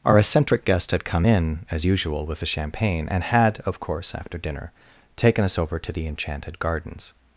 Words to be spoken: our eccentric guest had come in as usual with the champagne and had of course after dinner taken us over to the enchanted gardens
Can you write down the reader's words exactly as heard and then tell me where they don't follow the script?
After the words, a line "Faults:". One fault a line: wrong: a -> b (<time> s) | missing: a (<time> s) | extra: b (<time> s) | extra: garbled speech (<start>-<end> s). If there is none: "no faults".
our eccentric guest had come in as usual with the champagne and had of course after dinner taken us over to the enchanted gardens
Faults:
no faults